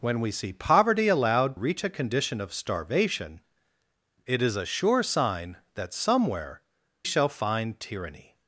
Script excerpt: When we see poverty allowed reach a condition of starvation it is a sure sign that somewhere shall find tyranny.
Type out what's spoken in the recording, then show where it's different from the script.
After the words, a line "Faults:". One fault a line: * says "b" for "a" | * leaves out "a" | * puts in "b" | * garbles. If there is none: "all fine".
When we see poverty allowed reach a condition of starvation it is a sure sign that somewhere shall find tyranny.
Faults:
all fine